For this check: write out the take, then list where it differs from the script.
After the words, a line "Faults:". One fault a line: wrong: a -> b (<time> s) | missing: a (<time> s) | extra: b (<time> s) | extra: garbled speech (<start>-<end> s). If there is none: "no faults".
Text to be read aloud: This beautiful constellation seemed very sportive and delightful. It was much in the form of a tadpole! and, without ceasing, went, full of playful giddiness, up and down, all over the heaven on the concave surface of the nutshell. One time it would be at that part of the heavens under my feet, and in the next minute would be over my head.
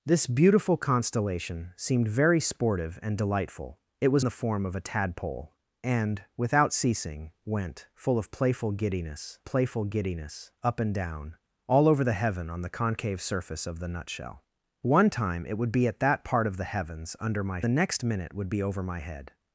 This beautiful constellation seemed very sportive and delightful. It was the form of a tadpole! and, without ceasing, went, full of playful giddiness playful giddiness, up and down, all over the heaven on the concave surface of the nutshell. One time it would be at that part of the heavens under my the next minute would be over my head.
Faults:
missing: much in (4.2 s)
extra: playful giddiness (9.4 s)
missing: feet and in (17.6 s)